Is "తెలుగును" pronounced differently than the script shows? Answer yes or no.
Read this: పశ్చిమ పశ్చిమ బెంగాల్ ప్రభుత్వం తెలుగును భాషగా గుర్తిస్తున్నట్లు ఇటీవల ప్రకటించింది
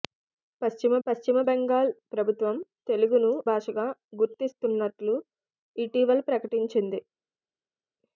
no